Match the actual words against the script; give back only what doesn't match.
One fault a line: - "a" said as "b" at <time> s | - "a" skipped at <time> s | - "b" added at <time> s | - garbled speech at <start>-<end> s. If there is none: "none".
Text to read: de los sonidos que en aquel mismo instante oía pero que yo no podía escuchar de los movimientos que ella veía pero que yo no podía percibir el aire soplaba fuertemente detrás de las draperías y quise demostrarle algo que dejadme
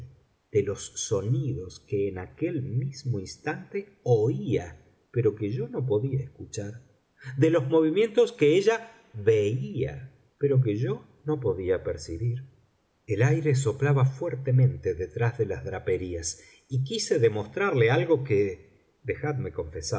none